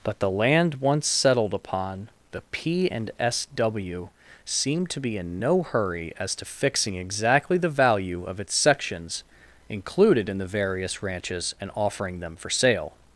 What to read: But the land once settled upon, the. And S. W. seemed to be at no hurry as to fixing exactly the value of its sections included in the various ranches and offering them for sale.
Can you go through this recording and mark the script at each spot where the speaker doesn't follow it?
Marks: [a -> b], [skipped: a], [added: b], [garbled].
But the land once settled upon, the. [added: P] And S. W. seemed to be [at -> in] no hurry as to fixing exactly the value of its sections included in the various ranches and offering them for sale.